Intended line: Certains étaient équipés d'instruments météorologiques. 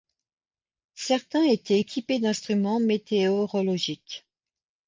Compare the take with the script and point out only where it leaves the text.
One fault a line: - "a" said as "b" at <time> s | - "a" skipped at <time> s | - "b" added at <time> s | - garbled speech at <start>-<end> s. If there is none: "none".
none